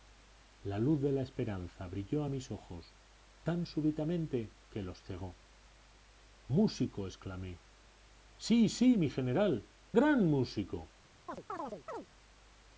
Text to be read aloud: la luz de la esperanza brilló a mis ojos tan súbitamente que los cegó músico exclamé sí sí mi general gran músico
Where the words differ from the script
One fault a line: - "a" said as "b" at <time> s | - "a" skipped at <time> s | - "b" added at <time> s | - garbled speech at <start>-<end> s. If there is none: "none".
none